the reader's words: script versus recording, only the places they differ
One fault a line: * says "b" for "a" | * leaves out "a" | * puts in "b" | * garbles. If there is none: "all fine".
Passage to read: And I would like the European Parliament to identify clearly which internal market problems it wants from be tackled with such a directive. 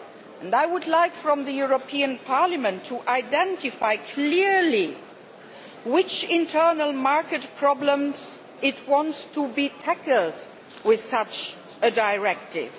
* says "to" for "from"